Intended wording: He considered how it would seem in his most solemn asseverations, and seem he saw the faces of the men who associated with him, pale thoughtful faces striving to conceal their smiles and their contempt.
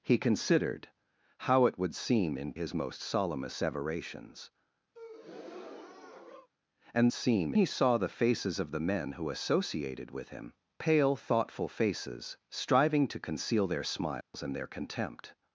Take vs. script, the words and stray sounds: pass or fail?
fail